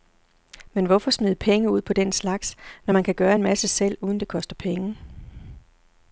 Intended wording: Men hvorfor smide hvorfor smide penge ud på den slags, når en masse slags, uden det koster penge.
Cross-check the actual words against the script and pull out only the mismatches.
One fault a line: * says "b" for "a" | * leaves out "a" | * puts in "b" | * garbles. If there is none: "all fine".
* leaves out "hvorfor smide"
* puts in "man kan gøre"
* says "selv" for "slags"